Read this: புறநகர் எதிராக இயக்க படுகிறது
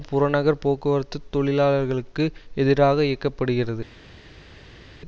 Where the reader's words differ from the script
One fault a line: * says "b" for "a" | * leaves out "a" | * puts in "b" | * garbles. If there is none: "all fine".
* puts in "போக்குவரத்து தொழிலாளர்களுக்கு"